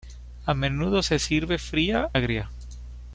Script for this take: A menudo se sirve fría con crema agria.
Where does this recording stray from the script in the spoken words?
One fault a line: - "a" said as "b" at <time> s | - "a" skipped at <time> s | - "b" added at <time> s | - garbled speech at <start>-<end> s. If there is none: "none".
- "con crema" skipped at 2.1 s